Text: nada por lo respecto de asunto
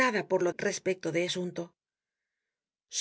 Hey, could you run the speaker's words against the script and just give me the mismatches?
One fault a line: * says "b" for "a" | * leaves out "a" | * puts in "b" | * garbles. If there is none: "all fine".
all fine